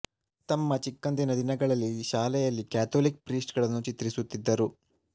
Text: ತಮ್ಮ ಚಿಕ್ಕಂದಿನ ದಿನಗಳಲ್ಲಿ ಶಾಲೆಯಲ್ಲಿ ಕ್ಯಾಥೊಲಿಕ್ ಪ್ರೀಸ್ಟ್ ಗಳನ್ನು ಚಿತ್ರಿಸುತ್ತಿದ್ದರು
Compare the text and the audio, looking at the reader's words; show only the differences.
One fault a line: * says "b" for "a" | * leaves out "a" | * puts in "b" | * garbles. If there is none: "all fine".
all fine